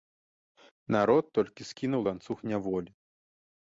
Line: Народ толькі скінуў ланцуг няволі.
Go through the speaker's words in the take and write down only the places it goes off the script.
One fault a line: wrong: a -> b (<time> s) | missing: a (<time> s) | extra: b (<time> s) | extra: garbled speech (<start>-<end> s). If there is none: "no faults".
no faults